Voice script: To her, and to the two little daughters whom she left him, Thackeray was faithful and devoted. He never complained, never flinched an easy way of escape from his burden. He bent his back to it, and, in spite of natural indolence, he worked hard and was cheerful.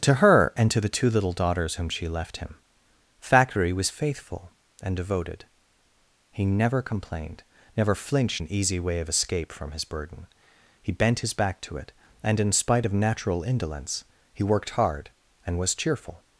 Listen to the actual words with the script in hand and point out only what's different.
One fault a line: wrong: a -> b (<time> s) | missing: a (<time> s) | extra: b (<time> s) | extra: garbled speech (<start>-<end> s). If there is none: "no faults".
no faults